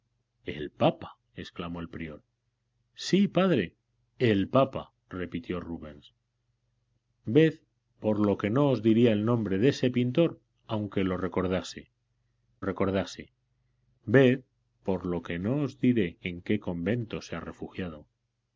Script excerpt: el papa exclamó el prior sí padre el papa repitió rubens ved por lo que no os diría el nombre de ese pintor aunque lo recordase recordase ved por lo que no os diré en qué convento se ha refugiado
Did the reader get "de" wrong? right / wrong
right